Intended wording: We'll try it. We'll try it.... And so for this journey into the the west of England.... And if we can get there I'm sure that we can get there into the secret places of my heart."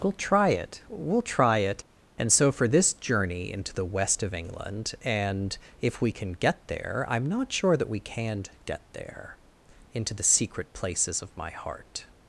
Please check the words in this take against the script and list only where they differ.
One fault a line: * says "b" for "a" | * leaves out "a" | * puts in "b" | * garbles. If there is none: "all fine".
* leaves out "the"
* puts in "not"